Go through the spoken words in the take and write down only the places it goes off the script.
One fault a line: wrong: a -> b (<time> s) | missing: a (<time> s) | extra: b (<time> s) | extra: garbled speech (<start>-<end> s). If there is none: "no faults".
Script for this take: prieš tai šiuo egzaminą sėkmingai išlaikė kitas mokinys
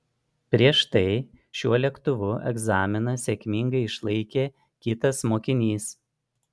extra: lėktuvu (1.8 s)